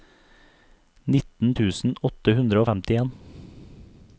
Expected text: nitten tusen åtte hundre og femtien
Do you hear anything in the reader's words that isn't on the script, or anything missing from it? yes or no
no